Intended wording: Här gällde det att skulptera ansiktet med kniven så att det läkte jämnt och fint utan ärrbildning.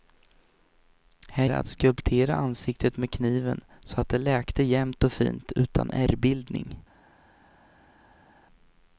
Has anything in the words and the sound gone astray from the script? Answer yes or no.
yes